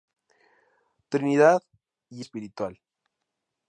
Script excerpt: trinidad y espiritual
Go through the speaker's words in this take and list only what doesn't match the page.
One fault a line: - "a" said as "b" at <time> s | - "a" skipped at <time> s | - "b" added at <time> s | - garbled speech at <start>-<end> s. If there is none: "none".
none